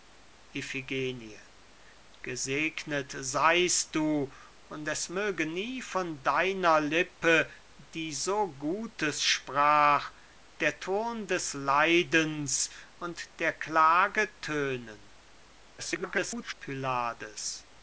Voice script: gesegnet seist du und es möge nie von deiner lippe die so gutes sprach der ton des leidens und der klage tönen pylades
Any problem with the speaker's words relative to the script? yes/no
yes